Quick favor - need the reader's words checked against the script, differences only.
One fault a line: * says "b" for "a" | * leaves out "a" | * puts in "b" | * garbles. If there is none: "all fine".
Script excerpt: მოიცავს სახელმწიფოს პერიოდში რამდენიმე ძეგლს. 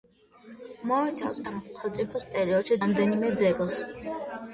all fine